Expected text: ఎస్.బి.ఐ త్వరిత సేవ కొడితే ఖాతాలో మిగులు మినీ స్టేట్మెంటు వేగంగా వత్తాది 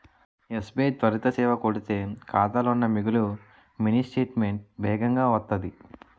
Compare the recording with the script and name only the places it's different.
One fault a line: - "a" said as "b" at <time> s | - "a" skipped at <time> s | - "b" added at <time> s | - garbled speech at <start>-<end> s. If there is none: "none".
- "ఉన్న" added at 2.7 s